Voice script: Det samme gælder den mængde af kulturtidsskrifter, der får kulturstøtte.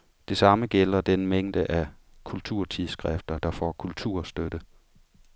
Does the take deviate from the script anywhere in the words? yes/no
no